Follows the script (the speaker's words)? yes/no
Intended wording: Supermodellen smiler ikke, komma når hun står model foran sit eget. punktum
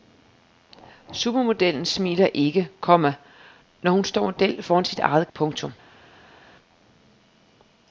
yes